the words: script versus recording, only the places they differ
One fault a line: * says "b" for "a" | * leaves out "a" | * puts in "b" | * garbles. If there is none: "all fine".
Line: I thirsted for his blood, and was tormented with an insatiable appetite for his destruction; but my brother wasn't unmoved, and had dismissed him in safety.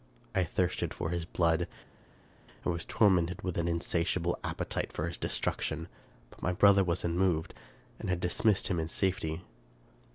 * says "was" for "wasn't"